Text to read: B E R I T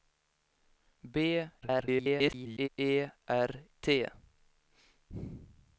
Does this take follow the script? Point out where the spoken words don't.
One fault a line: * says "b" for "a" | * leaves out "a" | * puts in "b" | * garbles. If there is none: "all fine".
* garbles
* leaves out "I"